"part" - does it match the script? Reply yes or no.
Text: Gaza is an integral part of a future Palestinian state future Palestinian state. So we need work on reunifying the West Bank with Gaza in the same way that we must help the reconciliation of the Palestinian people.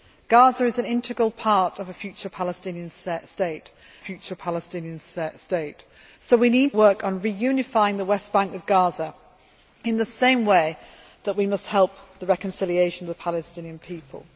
yes